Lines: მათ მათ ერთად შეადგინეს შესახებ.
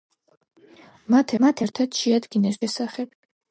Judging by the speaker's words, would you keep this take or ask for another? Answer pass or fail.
pass